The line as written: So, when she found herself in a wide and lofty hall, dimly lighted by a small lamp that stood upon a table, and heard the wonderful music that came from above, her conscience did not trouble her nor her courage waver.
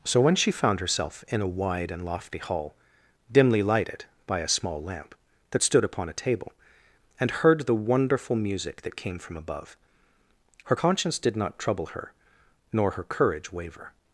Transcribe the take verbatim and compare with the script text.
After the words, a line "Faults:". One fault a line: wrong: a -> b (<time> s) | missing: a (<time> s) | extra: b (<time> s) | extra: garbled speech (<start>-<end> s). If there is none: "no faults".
So, when she found herself in a wide and lofty hall, dimly lighted by a small lamp that stood upon a table, and heard the wonderful music that came from above, her conscience did not trouble her nor her courage waver.
Faults:
no faults